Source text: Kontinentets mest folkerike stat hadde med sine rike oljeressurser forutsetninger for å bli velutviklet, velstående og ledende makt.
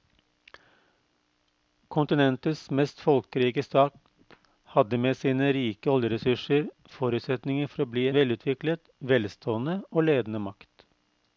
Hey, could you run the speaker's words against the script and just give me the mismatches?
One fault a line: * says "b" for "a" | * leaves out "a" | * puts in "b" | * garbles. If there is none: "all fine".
all fine